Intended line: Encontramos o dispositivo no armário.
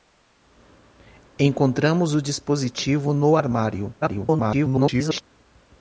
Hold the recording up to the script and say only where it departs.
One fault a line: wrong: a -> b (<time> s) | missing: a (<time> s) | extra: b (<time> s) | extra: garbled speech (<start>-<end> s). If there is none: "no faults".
extra: garbled speech (4.0-5.2 s)